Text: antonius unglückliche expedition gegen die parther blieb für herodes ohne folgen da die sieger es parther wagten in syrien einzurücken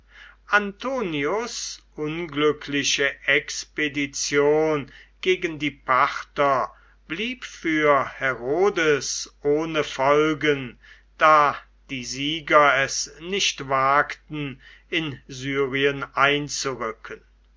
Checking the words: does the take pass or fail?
fail